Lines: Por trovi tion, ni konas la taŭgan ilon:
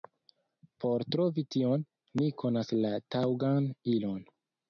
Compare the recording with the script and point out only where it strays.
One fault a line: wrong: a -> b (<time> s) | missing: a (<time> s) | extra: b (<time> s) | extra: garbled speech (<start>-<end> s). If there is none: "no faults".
no faults